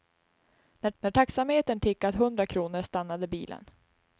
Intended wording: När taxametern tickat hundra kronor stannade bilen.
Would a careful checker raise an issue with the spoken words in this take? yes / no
yes